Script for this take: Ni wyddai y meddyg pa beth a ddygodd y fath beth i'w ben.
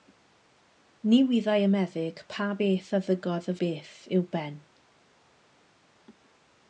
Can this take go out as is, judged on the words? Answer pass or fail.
fail